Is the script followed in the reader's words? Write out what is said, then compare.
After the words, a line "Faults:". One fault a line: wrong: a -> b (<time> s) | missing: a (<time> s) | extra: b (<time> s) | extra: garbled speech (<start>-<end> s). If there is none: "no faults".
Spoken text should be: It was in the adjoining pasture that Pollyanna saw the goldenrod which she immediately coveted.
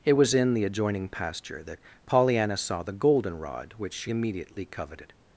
It was in the adjoining pasture that Pollyanna saw the goldenrod which she immediately coveted.
Faults:
no faults